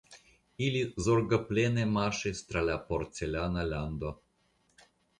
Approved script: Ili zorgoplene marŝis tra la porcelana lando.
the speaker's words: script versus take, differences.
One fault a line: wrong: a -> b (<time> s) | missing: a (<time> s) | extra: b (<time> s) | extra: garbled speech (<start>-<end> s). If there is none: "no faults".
no faults